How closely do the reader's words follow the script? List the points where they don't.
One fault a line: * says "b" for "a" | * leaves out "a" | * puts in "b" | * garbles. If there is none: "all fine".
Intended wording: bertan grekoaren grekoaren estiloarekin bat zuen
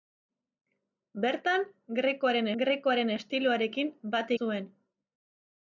all fine